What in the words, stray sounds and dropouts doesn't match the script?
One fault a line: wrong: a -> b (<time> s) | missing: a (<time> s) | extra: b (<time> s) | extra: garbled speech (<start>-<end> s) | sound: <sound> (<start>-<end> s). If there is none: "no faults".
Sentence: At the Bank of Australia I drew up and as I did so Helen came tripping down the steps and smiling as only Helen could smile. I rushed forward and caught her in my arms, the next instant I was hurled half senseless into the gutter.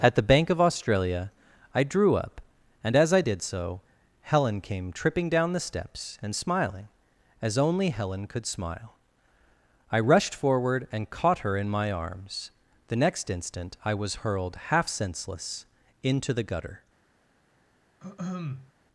sound: throat clearing (18.0-18.7 s)